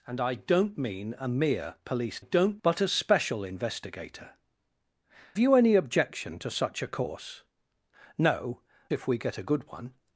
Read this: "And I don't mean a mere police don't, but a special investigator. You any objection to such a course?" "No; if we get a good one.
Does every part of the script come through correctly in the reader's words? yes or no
yes